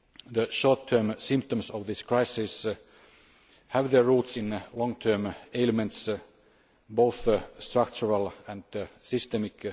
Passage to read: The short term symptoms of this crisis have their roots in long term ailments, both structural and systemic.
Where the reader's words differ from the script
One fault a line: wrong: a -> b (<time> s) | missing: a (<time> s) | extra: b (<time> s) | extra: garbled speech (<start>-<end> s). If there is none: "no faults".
no faults